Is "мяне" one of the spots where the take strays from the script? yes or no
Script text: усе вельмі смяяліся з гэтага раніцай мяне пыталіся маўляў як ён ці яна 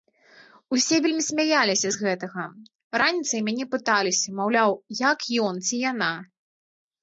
no